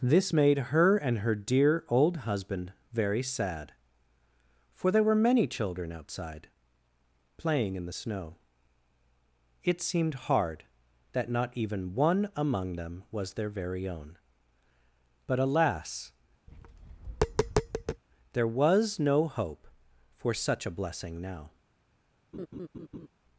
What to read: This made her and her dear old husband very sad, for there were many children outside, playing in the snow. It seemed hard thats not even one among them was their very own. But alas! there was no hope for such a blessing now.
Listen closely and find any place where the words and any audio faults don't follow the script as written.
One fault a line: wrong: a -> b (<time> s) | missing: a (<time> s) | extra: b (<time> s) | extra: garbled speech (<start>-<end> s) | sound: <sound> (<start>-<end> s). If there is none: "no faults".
wrong: thats -> that (11.1 s)
sound: tap (16.5-18.0 s)
sound: laugh (22.3-23.1 s)